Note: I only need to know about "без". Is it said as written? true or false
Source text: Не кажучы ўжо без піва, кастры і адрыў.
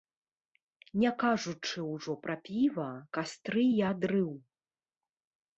false